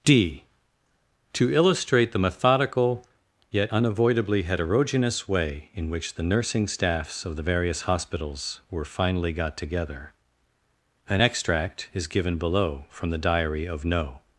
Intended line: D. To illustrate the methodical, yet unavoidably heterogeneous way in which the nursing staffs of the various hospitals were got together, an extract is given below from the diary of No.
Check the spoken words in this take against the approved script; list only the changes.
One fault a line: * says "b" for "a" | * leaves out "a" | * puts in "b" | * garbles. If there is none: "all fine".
* puts in "finally"